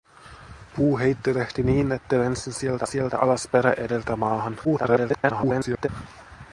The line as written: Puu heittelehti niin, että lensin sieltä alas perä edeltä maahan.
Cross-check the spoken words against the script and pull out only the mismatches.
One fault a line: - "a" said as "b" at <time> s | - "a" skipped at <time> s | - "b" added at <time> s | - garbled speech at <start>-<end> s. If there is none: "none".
- "sieltä" added at 2.8 s
- garbled speech at 4.6-5.9 s